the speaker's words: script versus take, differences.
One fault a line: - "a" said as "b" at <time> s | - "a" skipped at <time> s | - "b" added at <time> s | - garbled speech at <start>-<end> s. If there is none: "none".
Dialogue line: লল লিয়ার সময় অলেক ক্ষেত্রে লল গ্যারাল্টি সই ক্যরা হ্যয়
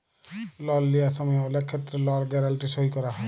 none